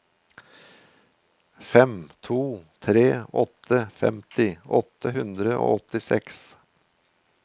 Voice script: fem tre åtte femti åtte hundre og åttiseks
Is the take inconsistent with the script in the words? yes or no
yes